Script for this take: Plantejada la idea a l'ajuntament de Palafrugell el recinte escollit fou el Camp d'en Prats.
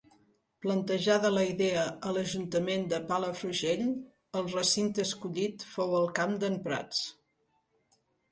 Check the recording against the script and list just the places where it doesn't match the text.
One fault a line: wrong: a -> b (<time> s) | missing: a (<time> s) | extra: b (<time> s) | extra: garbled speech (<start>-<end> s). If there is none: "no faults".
no faults